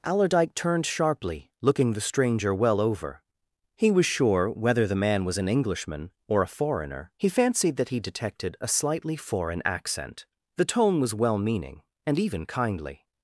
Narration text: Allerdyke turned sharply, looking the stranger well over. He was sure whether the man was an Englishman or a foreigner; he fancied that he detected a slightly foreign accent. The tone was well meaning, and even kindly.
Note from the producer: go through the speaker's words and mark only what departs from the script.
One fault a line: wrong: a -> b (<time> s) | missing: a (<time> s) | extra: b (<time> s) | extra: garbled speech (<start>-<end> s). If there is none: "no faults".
no faults